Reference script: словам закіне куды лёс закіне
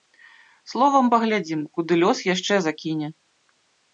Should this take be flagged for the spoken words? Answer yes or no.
yes